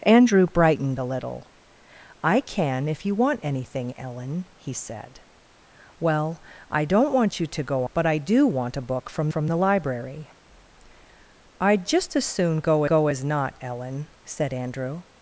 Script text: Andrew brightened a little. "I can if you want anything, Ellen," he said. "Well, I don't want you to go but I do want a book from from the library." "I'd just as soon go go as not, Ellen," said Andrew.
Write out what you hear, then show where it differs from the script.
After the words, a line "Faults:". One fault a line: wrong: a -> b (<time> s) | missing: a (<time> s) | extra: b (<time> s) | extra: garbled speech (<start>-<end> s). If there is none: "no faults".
Andrew brightened a little. "I can if you want anything, Ellen," he said. "Well, I don't want you to go but I do want a book from from the library." "I'd just as soon go go as not, Ellen," said Andrew.
Faults:
no faults